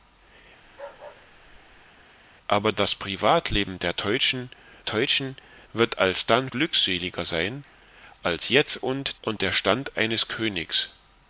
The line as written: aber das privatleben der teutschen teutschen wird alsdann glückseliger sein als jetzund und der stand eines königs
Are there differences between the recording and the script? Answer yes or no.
no